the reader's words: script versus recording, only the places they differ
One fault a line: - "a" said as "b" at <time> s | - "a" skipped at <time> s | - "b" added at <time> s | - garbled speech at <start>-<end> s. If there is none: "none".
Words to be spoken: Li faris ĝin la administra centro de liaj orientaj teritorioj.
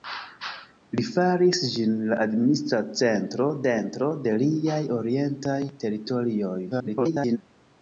- "centro" added at 3.7 s
- garbled speech at 6.7-7.4 s